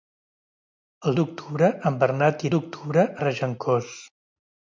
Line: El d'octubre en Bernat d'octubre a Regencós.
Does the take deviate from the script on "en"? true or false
false